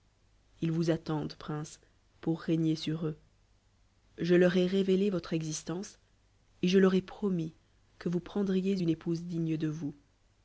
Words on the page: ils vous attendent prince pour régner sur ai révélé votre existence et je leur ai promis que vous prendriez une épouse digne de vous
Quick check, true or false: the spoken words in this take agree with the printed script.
false